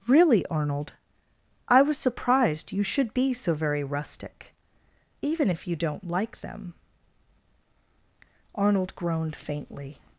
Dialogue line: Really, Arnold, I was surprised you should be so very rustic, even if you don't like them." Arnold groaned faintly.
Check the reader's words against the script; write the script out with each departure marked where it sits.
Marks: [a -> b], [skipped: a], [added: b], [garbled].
Really, Arnold, I was surprised you should be so very rustic, even if you don't like them." Arnold groaned faintly.